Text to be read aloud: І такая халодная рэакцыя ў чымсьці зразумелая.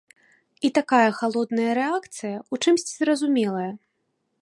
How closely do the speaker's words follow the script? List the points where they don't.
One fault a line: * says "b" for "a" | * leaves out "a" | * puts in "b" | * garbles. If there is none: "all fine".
all fine